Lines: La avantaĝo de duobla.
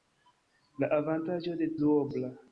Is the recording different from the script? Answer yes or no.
no